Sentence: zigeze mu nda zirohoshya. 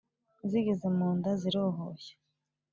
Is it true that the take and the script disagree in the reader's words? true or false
false